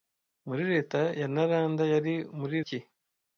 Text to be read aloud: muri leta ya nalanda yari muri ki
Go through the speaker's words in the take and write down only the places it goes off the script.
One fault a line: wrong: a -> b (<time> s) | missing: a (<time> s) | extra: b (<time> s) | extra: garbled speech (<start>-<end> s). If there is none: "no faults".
no faults